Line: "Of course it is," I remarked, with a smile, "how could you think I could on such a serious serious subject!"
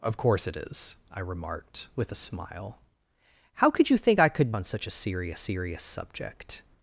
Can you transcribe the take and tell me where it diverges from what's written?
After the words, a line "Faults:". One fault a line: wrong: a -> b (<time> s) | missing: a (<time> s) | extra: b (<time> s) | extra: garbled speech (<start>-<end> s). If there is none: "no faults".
"Of course it is," I remarked, with a smile, "how could you think I could on such a serious serious subject!"
Faults:
no faults